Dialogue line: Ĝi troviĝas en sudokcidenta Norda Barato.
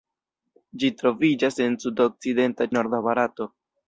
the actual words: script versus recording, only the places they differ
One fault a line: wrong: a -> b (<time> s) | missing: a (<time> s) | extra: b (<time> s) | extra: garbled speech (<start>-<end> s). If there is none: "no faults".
no faults